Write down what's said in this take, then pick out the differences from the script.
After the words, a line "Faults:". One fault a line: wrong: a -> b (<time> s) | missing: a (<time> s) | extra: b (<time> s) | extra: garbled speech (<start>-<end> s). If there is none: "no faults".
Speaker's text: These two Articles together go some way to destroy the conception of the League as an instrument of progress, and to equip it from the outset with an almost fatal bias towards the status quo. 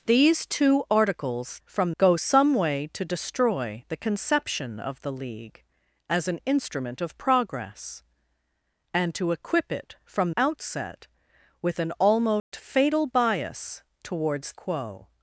These two Articles from go some way to destroy the conception of the League as an instrument of progress, and to equip it from outset with an almost fatal bias towards quo.
Faults:
wrong: together -> from (1.6 s)
missing: the (10.3 s)
missing: the status (14.5 s)